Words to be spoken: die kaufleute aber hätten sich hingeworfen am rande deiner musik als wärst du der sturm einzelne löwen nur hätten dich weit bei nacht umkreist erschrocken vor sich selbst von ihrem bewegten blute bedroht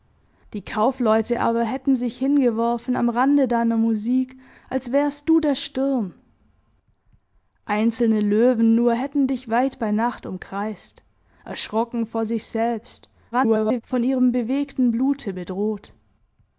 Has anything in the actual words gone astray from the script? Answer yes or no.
yes